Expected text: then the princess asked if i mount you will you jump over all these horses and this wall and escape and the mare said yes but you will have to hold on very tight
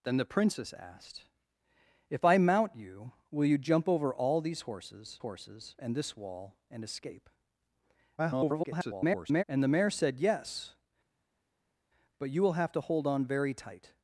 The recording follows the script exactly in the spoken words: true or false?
false